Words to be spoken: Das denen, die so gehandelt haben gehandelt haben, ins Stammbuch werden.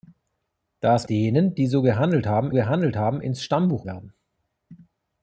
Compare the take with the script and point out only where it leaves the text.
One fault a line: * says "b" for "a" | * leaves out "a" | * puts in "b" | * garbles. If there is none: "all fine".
all fine